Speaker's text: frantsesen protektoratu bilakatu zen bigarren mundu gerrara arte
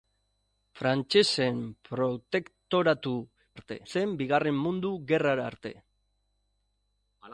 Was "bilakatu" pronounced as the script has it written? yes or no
no